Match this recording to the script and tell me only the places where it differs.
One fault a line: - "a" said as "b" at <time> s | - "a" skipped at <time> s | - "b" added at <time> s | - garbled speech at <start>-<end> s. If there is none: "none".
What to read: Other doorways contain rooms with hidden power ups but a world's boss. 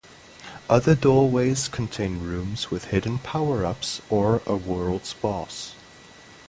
- "but" said as "or" at 4.1 s